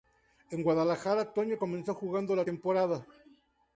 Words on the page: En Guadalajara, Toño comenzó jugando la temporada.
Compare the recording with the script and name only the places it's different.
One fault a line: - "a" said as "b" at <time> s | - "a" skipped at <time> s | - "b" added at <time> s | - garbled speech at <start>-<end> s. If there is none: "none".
none